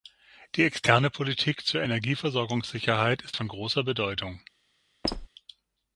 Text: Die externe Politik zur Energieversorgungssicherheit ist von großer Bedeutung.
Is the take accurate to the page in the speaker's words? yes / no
yes